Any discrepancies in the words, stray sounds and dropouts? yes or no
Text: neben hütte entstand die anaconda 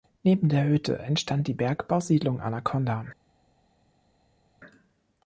yes